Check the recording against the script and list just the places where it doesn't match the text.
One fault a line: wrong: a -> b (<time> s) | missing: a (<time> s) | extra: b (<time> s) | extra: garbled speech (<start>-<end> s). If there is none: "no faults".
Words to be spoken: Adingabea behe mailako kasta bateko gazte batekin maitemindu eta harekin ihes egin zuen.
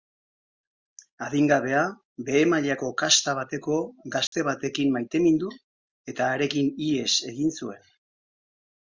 no faults